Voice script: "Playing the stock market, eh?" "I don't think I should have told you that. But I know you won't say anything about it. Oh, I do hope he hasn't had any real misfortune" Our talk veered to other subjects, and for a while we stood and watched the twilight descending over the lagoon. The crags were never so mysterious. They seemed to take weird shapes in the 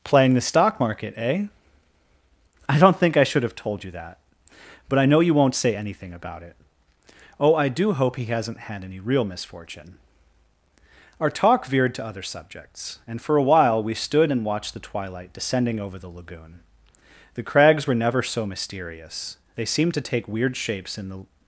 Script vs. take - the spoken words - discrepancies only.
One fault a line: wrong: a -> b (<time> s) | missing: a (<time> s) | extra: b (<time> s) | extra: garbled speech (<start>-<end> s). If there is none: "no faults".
no faults